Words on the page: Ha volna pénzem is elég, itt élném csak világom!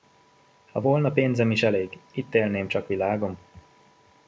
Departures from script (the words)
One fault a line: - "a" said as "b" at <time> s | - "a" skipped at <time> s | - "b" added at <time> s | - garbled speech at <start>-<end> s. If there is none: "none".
none